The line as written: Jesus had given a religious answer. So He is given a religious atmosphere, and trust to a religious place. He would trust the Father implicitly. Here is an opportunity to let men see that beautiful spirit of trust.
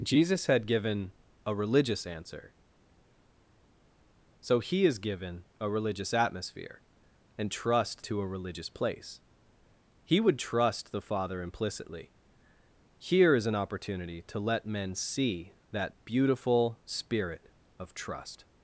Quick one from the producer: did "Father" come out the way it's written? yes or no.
yes